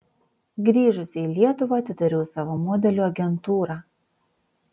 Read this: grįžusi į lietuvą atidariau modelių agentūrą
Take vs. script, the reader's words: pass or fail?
fail